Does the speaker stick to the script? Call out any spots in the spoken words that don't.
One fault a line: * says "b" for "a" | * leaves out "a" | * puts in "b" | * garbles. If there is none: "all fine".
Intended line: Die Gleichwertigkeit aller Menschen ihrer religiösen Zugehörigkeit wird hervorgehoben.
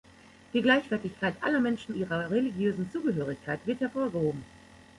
all fine